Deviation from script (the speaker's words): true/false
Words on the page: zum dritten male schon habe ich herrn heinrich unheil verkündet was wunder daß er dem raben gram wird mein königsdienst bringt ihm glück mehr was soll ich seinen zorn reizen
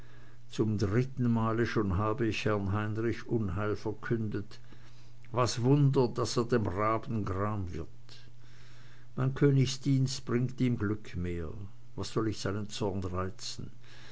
false